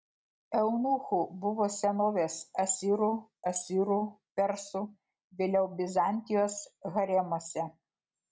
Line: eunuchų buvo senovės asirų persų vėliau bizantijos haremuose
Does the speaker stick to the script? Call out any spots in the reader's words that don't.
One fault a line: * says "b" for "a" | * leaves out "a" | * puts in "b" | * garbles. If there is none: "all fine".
* puts in "asirų"